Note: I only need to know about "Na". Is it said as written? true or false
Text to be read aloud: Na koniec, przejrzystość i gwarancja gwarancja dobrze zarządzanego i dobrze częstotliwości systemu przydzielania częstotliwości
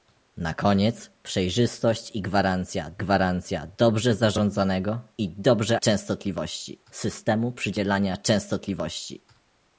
true